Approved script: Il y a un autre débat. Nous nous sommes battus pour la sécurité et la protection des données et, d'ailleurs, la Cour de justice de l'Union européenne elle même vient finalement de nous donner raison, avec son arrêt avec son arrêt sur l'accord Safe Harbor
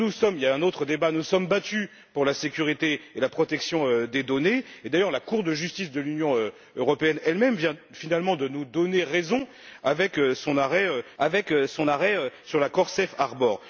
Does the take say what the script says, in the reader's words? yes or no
yes